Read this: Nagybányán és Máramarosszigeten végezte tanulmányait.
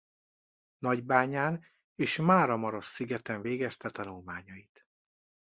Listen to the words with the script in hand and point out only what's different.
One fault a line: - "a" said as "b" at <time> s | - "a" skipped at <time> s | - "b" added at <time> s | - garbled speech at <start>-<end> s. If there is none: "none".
none